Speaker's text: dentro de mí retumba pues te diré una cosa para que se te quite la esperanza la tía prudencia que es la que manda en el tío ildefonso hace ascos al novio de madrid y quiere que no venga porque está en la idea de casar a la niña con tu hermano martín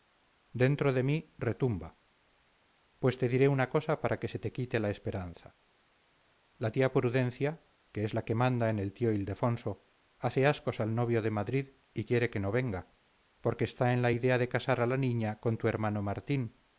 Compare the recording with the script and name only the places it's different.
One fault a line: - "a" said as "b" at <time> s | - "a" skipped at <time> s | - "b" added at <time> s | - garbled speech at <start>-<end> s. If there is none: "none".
none